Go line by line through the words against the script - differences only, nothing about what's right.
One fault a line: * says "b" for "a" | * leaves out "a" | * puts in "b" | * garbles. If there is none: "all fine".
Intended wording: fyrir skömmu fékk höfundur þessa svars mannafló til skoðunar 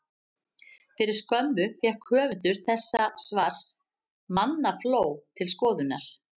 all fine